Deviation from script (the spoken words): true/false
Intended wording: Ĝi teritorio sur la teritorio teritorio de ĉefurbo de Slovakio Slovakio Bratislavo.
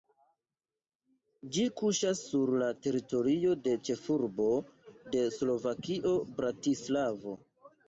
true